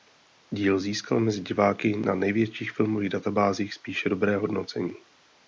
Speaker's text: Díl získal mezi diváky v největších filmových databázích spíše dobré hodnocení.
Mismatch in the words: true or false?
true